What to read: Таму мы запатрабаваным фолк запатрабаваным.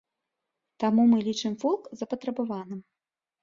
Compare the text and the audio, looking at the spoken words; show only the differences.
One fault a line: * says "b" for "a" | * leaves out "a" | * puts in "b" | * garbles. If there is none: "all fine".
* says "лічым" for "запатрабаваным"